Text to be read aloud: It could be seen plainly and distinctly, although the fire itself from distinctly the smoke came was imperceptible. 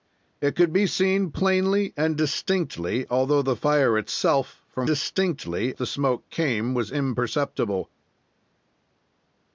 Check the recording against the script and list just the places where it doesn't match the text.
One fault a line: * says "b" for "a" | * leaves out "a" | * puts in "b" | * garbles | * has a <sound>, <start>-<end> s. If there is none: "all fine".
all fine